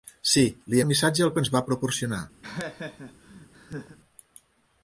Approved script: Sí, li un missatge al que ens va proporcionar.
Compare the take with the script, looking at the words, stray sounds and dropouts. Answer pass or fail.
fail